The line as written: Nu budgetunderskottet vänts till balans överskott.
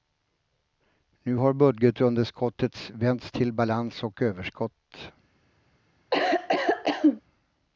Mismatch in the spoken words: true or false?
true